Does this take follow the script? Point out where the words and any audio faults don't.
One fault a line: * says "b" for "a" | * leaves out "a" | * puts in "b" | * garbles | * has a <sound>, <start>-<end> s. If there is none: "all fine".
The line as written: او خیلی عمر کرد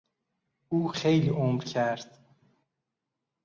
all fine